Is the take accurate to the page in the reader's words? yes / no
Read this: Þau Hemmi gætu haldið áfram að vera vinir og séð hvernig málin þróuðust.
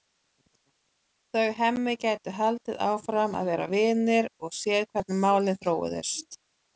yes